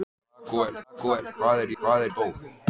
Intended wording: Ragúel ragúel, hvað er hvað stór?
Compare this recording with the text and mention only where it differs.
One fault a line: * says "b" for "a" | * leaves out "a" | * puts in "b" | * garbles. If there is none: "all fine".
all fine